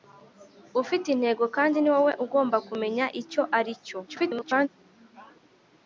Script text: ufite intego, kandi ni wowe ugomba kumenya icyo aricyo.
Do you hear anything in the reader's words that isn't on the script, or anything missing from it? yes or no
yes